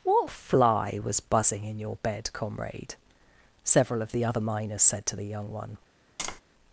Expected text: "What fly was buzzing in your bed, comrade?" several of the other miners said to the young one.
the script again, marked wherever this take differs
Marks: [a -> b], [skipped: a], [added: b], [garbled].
"What fly was buzzing in your bed, comrade?" several of the other miners said to the young one.